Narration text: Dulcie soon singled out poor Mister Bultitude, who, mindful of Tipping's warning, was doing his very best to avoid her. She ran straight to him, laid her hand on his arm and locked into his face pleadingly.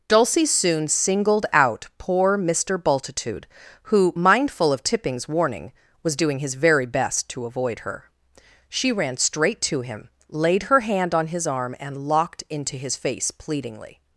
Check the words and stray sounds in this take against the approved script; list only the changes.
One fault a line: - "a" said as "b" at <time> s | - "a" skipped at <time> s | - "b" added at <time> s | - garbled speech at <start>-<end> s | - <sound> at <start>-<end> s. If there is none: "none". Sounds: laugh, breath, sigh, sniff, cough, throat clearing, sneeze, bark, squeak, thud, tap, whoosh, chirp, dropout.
none